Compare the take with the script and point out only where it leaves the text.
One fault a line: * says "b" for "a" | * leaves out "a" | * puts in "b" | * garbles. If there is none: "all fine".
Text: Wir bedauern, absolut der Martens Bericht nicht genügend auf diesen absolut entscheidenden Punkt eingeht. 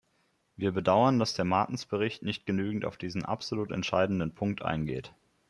* says "dass" for "absolut"